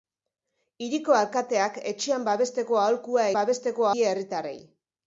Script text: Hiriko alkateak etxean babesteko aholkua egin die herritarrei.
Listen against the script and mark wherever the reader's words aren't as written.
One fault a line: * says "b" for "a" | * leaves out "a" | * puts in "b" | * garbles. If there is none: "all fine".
* says "babesteko" for "egin"